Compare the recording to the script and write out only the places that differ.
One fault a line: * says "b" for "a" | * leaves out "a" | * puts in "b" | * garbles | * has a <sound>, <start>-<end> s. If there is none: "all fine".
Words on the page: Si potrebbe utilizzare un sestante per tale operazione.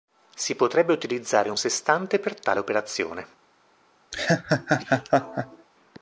* has a laugh, 4.1-5.7 s